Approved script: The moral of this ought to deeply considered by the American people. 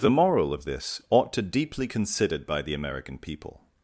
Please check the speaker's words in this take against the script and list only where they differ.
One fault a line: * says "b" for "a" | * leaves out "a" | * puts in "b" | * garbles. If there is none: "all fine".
all fine